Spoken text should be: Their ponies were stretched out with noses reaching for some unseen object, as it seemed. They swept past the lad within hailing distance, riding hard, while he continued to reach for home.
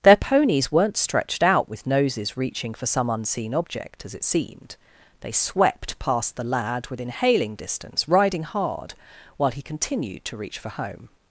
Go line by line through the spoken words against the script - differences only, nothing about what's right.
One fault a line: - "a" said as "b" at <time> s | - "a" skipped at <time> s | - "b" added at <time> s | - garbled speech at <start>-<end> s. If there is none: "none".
- "were" said as "weren't" at 0.7 s